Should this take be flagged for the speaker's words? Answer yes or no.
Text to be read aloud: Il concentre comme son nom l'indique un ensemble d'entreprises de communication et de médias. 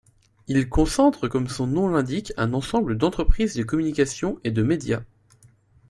no